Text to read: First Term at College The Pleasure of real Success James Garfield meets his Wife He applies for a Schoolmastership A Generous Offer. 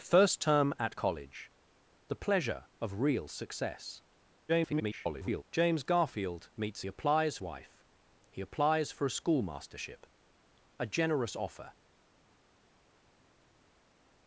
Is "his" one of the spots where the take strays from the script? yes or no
yes